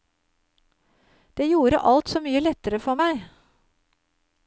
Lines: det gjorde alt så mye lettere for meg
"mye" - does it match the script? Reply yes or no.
yes